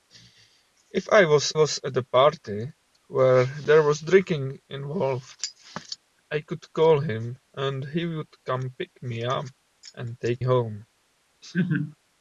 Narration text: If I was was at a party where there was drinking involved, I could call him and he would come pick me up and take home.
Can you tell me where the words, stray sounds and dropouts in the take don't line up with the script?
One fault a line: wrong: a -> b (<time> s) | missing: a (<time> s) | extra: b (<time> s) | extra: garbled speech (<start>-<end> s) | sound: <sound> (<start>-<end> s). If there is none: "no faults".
sound: laugh (11.4-12.0 s)